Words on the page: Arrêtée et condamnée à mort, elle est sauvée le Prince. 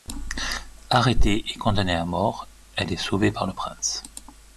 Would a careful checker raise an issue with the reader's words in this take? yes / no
yes